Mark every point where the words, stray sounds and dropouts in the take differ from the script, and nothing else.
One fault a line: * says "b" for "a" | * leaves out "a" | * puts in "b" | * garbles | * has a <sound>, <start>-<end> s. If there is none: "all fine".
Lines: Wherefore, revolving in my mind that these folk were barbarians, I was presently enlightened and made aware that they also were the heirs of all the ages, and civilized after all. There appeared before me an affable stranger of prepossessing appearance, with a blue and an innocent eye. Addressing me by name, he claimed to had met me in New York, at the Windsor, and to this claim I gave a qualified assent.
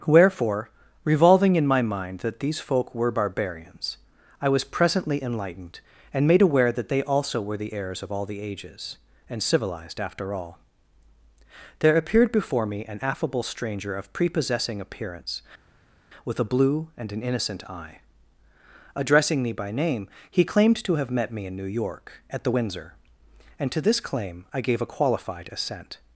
* says "have" for "had"